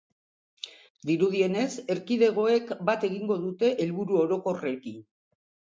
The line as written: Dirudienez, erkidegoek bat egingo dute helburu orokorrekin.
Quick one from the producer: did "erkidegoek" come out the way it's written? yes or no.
yes